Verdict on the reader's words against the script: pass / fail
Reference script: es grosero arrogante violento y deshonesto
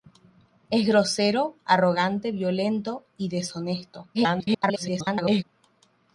fail